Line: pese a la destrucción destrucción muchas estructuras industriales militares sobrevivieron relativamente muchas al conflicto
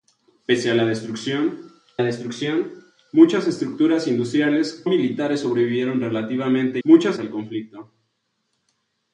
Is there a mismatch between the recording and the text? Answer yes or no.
no